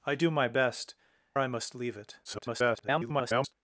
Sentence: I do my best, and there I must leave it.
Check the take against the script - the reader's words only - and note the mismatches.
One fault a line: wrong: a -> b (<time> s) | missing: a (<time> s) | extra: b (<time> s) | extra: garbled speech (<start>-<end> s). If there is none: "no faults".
missing: and there (0.9 s)
extra: garbled speech (2.2-3.5 s)